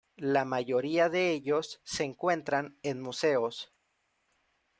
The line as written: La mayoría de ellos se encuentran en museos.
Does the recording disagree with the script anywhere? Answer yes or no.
no